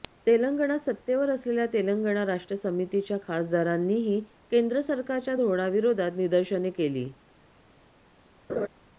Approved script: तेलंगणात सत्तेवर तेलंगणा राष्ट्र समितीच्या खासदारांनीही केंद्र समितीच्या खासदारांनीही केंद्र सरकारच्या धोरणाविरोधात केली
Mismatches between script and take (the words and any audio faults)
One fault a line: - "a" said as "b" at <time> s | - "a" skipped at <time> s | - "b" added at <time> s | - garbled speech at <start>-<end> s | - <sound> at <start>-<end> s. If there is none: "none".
- "असलेल्या" added at 1.3 s
- "समितीच्या खासदारांनीही केंद्र" skipped at 4.8 s
- "निदर्शने" added at 6.2 s
- laugh at 8.5-8.7 s